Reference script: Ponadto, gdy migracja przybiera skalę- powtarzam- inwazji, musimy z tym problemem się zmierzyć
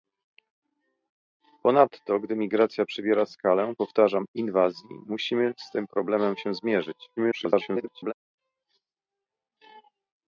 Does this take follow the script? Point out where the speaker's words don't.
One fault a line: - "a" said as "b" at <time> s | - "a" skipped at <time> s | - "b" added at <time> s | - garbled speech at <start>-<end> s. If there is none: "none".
- garbled speech at 7.2-8.1 s